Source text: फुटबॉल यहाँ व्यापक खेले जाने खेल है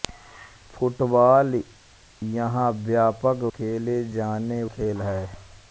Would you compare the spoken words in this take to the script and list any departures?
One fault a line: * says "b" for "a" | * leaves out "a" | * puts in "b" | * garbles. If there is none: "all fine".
all fine